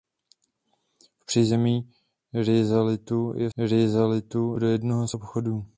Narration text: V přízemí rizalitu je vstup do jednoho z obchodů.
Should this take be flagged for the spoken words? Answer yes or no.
yes